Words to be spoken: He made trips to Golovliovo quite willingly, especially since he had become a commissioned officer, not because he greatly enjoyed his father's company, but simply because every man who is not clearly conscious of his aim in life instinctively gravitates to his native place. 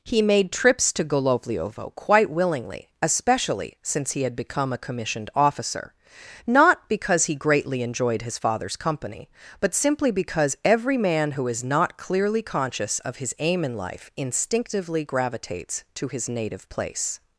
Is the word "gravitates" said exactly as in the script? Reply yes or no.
yes